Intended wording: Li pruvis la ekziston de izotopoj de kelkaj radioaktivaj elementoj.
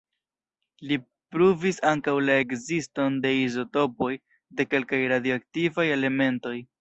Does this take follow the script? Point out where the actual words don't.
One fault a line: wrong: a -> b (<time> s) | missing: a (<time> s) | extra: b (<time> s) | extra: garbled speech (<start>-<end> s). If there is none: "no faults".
extra: ankaŭ (1.9 s)